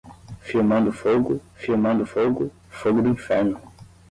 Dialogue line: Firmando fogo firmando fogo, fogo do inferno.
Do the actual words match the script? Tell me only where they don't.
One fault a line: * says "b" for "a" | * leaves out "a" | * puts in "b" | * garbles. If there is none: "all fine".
all fine